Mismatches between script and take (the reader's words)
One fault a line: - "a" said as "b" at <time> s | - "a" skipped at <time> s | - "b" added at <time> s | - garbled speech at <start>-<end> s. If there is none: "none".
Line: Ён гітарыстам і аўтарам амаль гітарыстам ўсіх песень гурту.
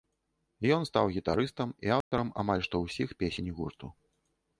- "стаў" added at 0.9 s
- "гітарыстам" said as "што" at 2.7 s